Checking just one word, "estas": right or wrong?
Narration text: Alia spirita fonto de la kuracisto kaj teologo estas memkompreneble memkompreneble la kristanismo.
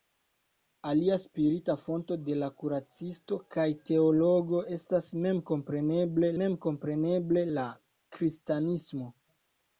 right